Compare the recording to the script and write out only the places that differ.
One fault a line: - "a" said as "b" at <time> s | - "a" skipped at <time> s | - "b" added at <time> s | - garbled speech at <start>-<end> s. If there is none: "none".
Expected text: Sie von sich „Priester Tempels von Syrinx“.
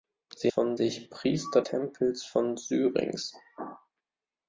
none